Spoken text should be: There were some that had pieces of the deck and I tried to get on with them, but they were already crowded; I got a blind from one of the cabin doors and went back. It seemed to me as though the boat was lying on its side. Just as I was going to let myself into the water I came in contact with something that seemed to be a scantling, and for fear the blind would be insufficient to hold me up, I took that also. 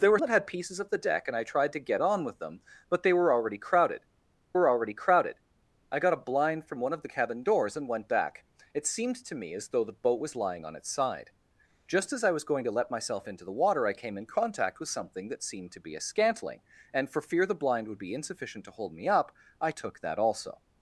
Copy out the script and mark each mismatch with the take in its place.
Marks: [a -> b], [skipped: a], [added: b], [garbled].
There were [skipped: some] that had pieces of the deck and I tried to get on with them, but they were already crowded; [added: were already crowded] I got a blind from one of the cabin doors and went back. It seemed to me as though the boat was lying on its side. Just as I was going to let myself into the water I came in contact with something that seemed to be a scantling, and for fear the blind would be insufficient to hold me up, I took that also.